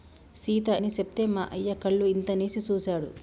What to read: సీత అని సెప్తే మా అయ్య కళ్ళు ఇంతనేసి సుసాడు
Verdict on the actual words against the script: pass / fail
pass